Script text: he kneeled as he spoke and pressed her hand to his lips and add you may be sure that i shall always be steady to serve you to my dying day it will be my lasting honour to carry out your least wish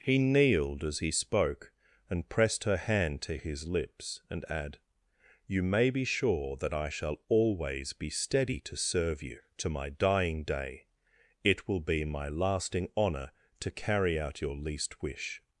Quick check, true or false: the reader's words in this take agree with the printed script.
true